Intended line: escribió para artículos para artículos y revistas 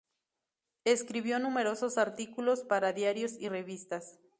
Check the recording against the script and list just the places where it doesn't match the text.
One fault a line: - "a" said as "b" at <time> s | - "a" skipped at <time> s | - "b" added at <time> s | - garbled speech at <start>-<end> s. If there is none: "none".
- "para" said as "numerosos" at 1.4 s
- "artículos" said as "diarios" at 2.9 s